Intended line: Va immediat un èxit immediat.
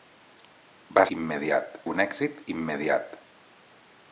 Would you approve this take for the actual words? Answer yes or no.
yes